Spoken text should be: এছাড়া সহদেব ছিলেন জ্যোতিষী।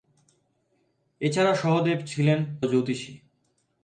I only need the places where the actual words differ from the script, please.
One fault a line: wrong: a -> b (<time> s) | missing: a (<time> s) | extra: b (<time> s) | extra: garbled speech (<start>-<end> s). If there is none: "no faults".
no faults